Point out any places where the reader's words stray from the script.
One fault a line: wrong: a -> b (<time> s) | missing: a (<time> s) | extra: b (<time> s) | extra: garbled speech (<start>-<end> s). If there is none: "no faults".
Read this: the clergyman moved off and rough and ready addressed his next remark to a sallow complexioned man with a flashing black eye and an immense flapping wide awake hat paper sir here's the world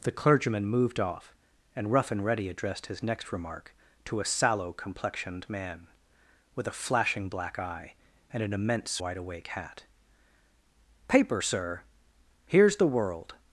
missing: flapping (9.0 s)